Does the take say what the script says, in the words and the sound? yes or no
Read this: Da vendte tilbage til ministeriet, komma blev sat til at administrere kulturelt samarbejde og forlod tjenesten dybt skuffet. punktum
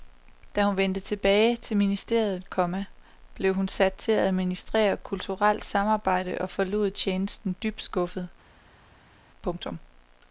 no